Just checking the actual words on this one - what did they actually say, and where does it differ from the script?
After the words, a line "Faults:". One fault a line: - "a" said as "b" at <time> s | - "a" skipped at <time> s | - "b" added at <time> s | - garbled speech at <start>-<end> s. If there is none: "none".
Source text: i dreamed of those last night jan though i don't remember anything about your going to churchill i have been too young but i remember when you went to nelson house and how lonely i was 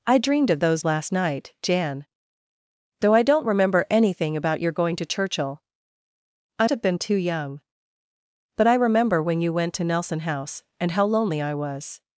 i dreamed of those last night jan though i don't remember anything about your going to churchill i have been too young but i remember when you went to nelson house and how lonely i was
Faults:
none